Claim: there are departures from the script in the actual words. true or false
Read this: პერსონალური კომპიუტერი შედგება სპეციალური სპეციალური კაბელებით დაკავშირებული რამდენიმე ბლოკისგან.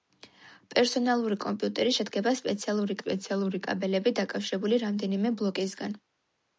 false